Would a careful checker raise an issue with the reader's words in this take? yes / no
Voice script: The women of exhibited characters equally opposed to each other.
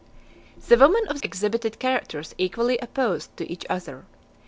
no